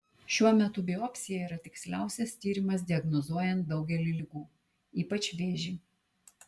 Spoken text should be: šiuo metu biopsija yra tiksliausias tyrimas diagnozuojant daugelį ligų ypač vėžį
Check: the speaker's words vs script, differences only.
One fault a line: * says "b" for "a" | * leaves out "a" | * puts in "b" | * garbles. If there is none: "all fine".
all fine